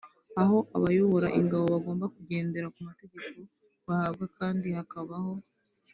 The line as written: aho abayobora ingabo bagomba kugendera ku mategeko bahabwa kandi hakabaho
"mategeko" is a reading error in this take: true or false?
false